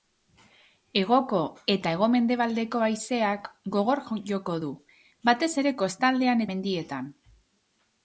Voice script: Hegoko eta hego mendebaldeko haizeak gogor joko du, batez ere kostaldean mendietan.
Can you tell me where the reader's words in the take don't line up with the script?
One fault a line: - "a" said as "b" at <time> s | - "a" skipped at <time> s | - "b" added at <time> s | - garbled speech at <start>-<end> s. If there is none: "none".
none